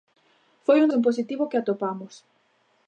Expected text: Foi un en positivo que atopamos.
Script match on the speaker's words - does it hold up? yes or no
yes